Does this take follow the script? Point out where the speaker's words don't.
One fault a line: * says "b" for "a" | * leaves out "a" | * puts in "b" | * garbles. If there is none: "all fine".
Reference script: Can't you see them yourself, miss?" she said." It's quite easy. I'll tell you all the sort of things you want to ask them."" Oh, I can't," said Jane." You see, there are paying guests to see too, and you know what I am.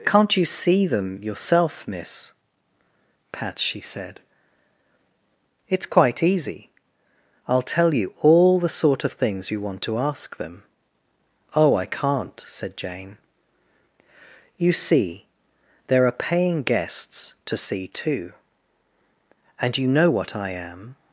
* puts in "pat"